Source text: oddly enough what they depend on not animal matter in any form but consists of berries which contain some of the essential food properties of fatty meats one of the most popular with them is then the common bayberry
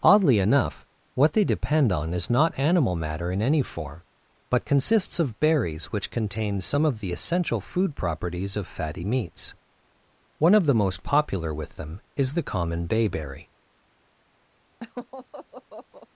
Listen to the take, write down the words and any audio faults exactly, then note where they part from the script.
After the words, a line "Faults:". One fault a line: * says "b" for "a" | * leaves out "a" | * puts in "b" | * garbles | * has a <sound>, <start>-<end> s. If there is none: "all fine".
oddly enough what they depend on is not animal matter in any form but consists of berries which contain some of the essential food properties of fatty meats one of the most popular with them is the common bayberry
Faults:
* puts in "is"
* leaves out "then"
* has a laugh, 14.8-16.1 s